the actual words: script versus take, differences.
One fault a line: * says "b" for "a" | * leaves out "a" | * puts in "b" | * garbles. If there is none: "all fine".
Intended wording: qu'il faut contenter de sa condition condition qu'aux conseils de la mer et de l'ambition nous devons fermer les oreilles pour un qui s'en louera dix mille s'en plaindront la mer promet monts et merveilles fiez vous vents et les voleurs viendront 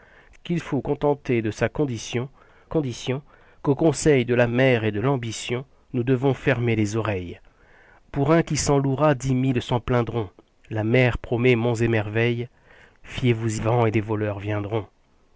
all fine